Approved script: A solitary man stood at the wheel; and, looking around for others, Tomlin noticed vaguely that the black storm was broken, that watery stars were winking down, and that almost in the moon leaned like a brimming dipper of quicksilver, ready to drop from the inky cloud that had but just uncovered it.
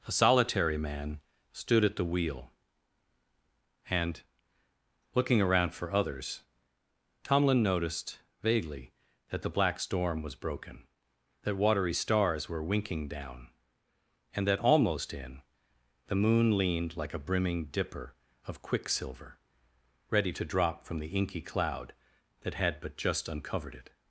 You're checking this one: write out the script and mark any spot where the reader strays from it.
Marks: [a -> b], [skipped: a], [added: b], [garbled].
A solitary man stood at the wheel; and, looking around for others, Tomlin noticed vaguely that the black storm was broken, that watery stars were winking down, and that almost in the moon leaned like a brimming dipper of quicksilver, ready to drop from the inky cloud that had but just uncovered it.